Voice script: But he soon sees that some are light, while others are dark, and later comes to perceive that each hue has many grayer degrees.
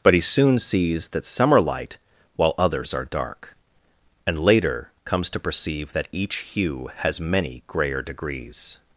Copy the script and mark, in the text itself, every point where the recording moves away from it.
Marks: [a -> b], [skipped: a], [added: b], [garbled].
But he soon sees that some are light, while others are dark, and later comes to perceive that each hue has many grayer degrees.